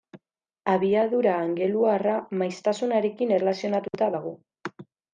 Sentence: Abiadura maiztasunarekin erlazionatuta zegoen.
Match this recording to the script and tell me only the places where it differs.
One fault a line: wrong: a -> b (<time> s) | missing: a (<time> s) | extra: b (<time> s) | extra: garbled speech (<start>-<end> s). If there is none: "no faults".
extra: angeluarra (1.4 s)
wrong: zegoen -> dago (4.2 s)